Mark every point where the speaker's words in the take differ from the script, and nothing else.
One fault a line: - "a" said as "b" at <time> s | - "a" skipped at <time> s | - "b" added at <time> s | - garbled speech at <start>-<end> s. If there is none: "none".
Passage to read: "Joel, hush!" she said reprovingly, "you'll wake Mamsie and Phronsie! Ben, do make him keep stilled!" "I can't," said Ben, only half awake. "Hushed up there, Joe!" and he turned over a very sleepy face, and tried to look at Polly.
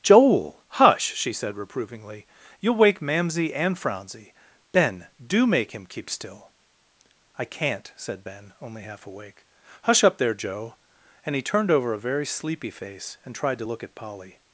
- "stilled" said as "still" at 6.1 s
- "Hushed" said as "Hush" at 9.8 s